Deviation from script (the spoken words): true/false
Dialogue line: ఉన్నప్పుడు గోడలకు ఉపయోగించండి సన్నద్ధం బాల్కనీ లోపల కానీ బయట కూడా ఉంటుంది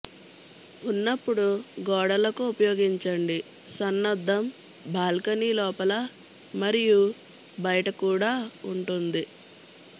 true